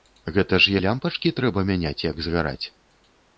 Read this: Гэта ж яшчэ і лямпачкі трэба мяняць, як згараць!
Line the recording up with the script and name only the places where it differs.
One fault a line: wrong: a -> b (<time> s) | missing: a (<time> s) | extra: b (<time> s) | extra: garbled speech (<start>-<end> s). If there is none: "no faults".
missing: яшчэ (0.7 s)